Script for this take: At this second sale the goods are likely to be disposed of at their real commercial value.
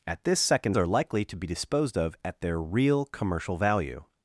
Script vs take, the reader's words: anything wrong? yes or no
yes